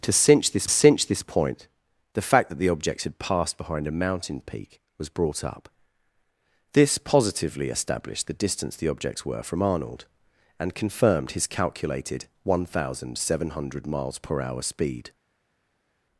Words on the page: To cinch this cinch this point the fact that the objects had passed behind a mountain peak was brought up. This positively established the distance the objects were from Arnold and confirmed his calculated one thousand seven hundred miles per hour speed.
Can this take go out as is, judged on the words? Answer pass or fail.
pass